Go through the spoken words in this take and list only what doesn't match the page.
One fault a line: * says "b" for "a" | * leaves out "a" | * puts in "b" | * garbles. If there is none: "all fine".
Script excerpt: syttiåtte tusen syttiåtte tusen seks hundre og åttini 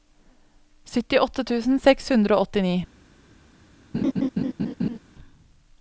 * leaves out "syttiåtte tusen"